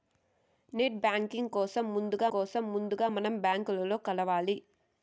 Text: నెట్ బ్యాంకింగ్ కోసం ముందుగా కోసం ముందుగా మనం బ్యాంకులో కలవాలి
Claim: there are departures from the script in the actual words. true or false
false